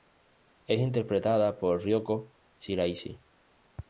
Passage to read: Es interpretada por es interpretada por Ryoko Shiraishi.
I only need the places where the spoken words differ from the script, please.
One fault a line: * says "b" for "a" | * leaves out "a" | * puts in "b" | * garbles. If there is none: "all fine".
* leaves out "es interpretada por"